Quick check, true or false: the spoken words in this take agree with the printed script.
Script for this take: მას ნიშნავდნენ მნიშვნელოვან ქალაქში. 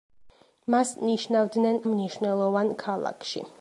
true